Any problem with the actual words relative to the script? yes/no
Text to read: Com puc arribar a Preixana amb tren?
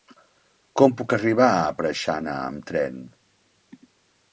no